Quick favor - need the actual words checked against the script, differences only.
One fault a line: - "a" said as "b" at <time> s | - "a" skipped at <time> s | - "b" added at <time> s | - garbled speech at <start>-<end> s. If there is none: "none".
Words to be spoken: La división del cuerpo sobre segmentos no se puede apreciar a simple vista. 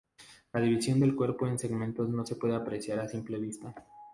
- "sobre" said as "en" at 1.4 s